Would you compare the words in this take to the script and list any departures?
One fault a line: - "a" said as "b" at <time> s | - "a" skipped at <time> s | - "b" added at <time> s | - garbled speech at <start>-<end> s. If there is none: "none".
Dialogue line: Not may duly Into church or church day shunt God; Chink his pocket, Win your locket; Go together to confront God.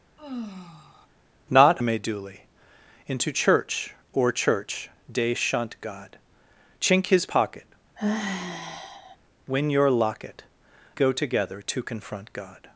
none